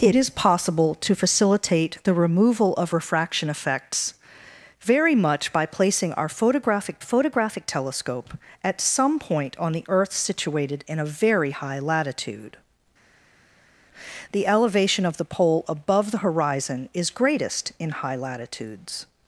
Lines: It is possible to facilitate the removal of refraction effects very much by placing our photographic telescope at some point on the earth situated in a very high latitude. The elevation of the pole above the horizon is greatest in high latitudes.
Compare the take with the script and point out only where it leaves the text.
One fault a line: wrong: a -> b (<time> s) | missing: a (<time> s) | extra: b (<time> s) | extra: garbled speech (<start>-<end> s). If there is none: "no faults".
extra: photographic (7.0 s)